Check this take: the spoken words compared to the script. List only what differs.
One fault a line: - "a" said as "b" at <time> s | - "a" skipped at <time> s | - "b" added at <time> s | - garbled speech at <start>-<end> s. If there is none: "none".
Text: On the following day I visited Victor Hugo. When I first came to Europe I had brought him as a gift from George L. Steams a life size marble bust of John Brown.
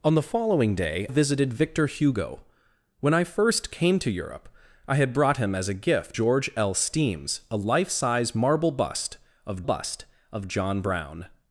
- "I" skipped at 1.1 s
- "from" skipped at 6.2 s
- "bust of" added at 9.6 s